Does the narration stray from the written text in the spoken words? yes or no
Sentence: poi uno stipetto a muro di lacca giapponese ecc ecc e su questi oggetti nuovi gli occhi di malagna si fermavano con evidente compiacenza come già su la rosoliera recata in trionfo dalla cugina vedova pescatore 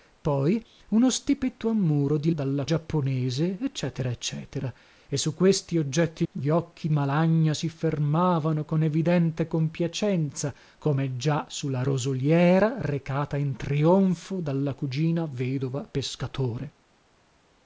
yes